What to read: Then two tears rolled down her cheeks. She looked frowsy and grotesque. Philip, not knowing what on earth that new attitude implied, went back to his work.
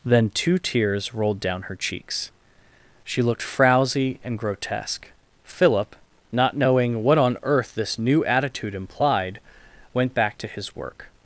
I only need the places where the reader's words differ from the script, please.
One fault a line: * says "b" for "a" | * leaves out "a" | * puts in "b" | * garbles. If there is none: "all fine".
* says "this" for "that"